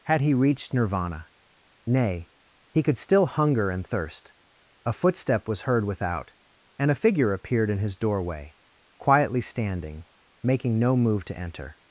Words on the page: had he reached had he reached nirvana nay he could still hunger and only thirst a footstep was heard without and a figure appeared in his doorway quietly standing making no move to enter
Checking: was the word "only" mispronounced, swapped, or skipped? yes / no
yes